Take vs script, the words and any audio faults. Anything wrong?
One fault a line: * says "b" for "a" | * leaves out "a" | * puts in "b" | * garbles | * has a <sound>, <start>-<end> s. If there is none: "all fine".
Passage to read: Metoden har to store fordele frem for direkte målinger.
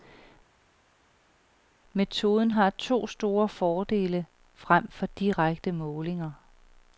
all fine